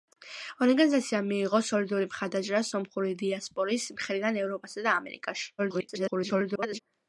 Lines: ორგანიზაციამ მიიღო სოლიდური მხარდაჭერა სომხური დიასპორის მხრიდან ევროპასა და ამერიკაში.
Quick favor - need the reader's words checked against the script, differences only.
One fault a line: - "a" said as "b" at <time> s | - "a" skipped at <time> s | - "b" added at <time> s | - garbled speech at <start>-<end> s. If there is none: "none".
- garbled speech at 5.6-6.8 s